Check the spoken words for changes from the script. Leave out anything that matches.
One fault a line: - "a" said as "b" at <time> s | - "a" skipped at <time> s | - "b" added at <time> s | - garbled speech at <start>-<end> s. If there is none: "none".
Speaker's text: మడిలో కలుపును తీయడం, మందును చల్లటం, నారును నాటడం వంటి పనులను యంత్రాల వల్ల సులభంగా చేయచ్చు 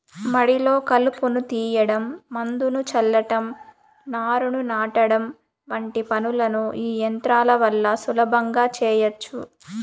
- "ఈ" added at 6.8 s